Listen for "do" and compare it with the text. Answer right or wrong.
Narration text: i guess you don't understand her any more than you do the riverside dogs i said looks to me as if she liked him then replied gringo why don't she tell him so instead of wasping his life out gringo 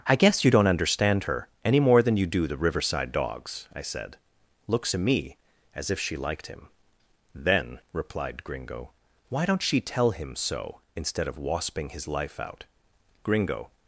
right